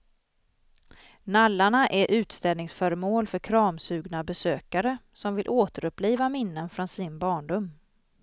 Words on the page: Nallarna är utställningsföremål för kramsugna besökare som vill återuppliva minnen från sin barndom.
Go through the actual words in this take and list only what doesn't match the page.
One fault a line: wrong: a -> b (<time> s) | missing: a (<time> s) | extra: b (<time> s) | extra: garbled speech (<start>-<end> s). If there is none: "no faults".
no faults